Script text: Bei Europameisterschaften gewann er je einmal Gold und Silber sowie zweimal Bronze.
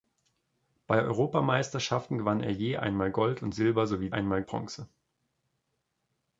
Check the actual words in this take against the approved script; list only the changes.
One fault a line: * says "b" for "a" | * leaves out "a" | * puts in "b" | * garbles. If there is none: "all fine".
* says "einmal" for "zweimal"